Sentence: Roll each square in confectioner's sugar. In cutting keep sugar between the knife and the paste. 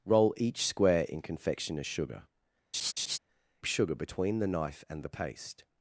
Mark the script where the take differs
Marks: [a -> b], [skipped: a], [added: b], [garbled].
Roll each square in confectioner's sugar. [skipped: In cutting keep] sugar between the knife and the paste.